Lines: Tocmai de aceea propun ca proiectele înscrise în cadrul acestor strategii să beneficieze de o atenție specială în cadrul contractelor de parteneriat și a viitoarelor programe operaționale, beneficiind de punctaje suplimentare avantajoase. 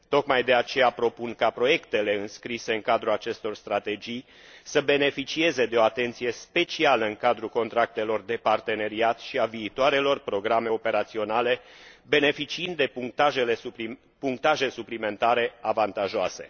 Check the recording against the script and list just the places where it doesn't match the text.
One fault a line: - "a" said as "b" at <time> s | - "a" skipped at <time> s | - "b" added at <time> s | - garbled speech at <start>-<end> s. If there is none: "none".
none